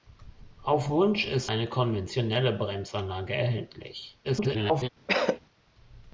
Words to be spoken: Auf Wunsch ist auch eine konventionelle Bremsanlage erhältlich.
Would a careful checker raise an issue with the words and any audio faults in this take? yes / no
yes